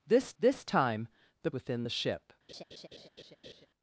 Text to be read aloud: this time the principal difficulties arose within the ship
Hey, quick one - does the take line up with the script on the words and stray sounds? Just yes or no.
no